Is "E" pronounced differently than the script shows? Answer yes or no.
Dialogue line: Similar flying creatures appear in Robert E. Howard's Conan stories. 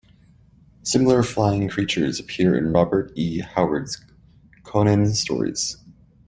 no